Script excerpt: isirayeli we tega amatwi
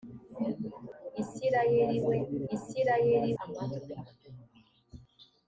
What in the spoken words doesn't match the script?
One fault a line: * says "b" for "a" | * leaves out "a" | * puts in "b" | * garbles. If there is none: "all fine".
* says "isirayeli" for "tega"